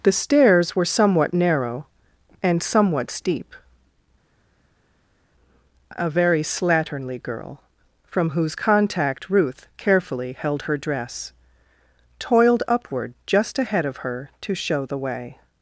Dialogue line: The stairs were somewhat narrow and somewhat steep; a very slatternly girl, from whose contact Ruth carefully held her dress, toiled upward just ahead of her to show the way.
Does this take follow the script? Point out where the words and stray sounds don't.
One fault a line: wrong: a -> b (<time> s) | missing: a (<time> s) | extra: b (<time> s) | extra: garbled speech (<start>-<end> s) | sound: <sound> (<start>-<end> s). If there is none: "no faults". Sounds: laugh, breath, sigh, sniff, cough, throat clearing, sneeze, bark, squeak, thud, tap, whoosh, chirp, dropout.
no faults